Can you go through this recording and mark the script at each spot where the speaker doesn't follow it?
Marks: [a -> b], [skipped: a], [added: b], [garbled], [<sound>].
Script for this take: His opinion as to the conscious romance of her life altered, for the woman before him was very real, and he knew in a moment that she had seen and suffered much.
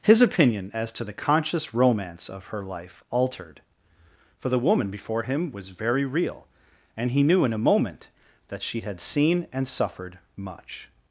His opinion as to the conscious romance of her life altered, for the woman before him was very real, and he knew in a moment that she had seen and suffered much.